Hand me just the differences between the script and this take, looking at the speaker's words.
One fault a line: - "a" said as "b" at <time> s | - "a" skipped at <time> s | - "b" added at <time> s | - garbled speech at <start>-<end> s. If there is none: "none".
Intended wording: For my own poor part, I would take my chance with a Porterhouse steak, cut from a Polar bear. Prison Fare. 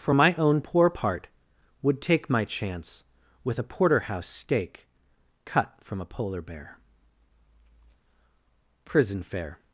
- "I" skipped at 1.3 s